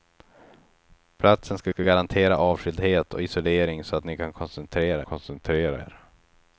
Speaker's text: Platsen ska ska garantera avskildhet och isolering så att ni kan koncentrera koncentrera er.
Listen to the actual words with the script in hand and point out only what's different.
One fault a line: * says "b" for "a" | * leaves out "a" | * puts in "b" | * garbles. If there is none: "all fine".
all fine